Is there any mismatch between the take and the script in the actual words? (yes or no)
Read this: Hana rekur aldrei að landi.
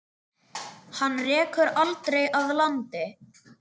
no